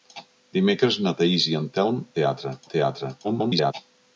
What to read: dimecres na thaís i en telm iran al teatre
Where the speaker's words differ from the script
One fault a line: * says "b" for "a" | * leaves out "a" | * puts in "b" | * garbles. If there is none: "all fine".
* says "teatre" for "iran"
* garbles